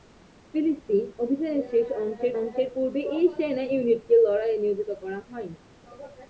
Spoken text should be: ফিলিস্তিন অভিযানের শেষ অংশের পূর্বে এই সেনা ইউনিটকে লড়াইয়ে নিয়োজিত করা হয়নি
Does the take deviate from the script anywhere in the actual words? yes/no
yes